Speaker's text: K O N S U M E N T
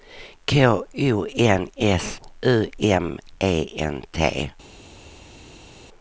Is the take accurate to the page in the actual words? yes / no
yes